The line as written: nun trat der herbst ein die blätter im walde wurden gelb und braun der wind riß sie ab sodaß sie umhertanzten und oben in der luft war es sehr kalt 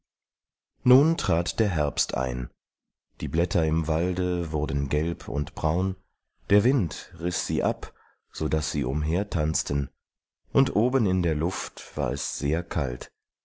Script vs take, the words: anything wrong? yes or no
no